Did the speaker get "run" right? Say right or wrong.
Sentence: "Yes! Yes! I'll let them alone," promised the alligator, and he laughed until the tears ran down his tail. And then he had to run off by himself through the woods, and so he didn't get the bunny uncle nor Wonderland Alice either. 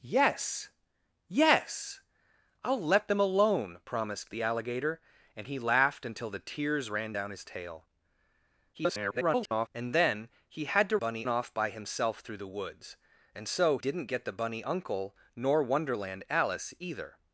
wrong